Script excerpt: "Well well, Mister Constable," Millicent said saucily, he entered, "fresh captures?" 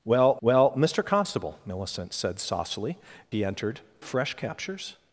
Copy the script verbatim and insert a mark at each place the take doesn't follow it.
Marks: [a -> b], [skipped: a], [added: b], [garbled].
"Well well, Mister Constable," Millicent said saucily, he entered, "fresh captures?"